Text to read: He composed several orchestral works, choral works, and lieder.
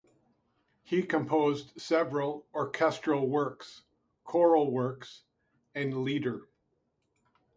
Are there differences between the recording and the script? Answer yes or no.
no